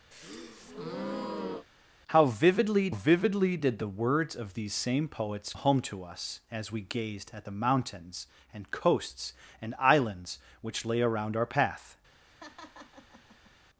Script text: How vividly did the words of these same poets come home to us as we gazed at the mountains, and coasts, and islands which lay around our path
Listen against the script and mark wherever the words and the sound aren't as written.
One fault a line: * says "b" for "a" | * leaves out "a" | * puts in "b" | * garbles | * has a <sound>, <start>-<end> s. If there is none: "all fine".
* has a breath, 0.1-1.7 s
* puts in "vividly"
* leaves out "come"
* has a laugh, 12.2-13.5 s